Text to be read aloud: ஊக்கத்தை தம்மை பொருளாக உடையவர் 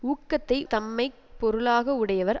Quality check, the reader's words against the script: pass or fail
pass